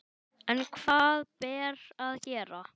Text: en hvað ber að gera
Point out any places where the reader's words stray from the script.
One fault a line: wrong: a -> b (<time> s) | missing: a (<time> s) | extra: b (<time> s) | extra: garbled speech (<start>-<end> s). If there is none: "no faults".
no faults